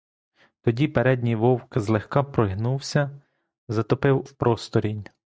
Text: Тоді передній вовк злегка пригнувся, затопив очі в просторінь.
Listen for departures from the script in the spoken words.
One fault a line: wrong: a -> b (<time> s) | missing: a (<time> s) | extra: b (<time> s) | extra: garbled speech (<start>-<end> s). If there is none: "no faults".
missing: очі (4.3 s)